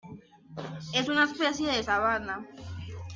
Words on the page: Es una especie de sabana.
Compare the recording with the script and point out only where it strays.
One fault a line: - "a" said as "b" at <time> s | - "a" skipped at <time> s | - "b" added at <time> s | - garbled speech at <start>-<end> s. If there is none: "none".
none